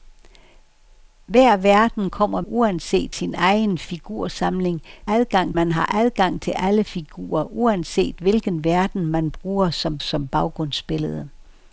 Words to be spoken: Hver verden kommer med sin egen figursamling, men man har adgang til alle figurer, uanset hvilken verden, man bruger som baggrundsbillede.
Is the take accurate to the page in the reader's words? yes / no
no